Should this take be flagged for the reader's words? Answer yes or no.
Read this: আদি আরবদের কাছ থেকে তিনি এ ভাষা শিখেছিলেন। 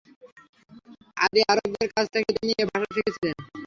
no